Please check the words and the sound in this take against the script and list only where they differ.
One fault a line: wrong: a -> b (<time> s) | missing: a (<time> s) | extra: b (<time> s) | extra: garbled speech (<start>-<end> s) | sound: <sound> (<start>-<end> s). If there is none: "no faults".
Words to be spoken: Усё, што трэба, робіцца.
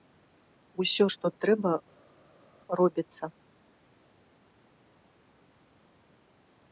no faults